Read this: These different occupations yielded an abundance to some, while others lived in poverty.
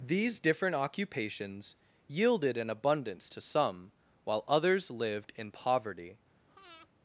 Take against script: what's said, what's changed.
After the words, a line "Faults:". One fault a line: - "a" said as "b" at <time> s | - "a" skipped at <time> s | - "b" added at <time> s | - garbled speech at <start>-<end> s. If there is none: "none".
These different occupations yielded an abundance to some, while others lived in poverty.
Faults:
none